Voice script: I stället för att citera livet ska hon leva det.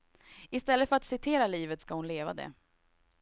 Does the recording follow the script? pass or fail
pass